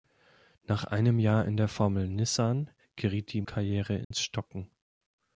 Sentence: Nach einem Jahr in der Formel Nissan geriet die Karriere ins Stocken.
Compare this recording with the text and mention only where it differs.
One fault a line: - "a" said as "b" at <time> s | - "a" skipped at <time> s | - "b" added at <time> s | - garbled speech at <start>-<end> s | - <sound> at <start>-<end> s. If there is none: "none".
- dropout at 4.0-4.1 s